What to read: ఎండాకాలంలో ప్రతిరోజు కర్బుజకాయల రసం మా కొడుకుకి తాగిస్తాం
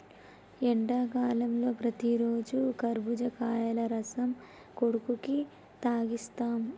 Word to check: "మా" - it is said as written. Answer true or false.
false